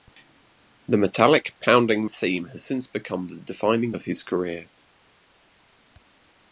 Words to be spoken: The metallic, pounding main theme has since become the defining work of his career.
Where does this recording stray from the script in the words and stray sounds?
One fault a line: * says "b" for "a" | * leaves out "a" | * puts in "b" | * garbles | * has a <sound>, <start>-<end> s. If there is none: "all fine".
* leaves out "main"
* leaves out "work"